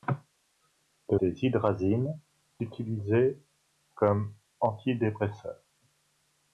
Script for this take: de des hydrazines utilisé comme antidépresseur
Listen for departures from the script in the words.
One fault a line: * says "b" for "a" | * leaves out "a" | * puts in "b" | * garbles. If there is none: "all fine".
all fine